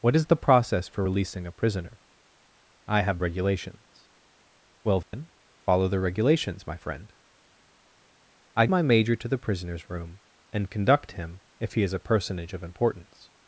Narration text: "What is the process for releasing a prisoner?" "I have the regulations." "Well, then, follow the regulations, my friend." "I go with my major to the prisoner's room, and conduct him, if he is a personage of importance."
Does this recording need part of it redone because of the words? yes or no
yes